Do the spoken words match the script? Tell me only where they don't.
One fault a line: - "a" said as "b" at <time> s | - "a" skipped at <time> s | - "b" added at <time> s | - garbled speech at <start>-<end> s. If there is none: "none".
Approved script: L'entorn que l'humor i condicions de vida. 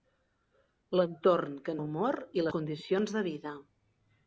none